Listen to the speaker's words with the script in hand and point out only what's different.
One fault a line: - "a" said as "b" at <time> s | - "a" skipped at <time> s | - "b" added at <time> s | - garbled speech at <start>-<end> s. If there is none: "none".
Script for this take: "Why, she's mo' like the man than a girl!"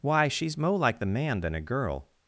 none